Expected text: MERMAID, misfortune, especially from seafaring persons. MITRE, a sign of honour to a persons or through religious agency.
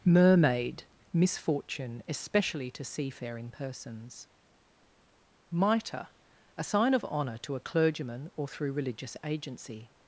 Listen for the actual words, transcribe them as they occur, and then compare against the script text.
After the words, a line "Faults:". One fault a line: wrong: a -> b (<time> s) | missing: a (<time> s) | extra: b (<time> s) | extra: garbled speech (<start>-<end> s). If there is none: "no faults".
MERMAID, misfortune, especially to seafaring persons. MITRE, a sign of honour to a clergyman or through religious agency.
Faults:
wrong: from -> to (2.7 s)
wrong: persons -> clergyman (7.6 s)